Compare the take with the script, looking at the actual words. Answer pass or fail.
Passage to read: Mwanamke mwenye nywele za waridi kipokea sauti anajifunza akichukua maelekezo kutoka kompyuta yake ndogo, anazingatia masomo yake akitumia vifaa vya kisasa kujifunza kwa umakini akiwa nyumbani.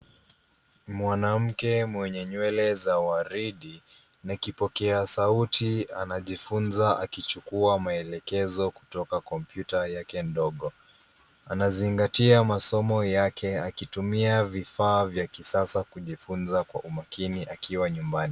fail